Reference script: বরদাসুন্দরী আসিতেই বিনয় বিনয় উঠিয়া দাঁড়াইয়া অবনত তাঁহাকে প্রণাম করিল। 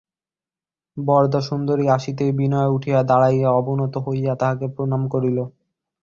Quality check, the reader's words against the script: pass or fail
fail